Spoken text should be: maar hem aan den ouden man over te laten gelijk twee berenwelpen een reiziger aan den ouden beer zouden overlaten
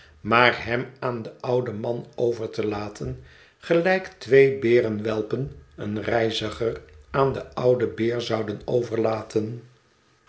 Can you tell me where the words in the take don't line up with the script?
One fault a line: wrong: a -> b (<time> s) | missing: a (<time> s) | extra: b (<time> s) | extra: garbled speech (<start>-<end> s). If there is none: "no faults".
no faults